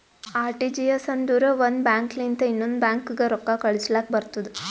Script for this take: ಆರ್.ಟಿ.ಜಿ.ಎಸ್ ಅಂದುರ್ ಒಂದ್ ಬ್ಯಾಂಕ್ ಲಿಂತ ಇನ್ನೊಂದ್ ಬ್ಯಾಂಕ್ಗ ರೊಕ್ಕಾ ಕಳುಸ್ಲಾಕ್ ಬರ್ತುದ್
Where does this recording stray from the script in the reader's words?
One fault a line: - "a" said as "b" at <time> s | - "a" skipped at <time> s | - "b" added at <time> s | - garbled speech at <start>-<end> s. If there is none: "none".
none